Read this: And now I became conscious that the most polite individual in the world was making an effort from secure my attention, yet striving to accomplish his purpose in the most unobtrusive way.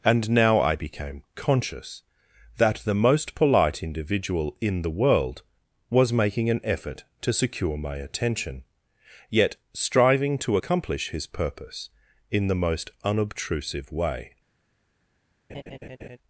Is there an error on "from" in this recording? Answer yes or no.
yes